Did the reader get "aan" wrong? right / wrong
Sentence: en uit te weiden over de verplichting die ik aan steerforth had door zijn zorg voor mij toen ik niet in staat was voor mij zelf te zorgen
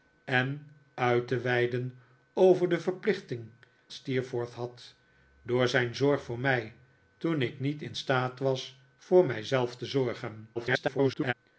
wrong